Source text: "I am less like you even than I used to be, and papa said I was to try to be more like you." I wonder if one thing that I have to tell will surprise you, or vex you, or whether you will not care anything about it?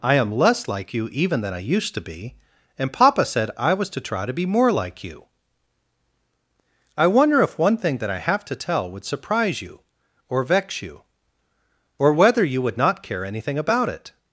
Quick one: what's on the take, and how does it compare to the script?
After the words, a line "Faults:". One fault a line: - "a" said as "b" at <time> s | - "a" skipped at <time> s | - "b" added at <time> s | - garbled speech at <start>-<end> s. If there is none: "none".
"I am less like you even than I used to be, and papa said I was to try to be more like you." I wonder if one thing that I have to tell would surprise you, or vex you, or whether you would not care anything about it?
Faults:
- "will" said as "would" at 8.9 s
- "will" said as "would" at 12.6 s